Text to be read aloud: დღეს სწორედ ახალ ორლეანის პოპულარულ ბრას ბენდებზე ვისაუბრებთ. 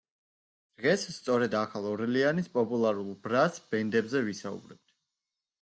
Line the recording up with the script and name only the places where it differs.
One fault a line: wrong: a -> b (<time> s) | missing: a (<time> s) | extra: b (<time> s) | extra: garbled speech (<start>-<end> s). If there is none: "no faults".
no faults